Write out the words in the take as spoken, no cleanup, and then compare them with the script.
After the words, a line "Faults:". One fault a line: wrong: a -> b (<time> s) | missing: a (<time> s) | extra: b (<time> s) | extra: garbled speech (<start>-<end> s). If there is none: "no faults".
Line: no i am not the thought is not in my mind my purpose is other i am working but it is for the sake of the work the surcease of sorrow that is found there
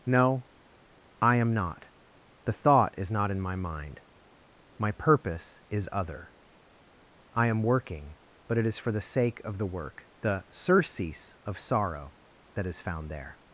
no i am not the thought is not in my mind my purpose is other i am working but it is for the sake of the work the surcease of sorrow that is found there
Faults:
no faults